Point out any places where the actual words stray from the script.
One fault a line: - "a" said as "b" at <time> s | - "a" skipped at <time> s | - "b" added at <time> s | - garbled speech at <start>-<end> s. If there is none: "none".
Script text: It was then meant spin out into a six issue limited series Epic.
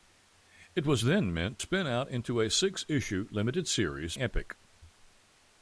none